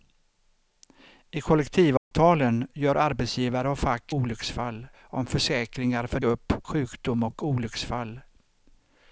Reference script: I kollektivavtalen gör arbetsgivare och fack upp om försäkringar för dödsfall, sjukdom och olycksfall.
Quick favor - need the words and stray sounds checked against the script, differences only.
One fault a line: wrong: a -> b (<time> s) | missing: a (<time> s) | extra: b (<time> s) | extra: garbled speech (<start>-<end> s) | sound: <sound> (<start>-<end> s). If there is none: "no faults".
sound: dropout (2.0-2.1 s)
wrong: upp -> olycksfall (4.1 s)
wrong: dödsfall -> upp (6.2 s)